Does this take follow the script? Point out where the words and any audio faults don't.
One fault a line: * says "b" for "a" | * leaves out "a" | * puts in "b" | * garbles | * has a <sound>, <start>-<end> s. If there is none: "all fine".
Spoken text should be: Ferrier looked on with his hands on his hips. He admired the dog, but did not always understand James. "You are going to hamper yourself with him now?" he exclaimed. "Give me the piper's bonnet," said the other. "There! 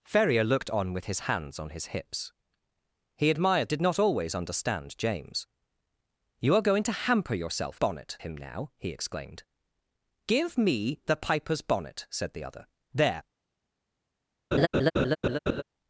* leaves out "the dog but"
* says "bonnet" for "with"
* has a laugh, 14.5-15.6 s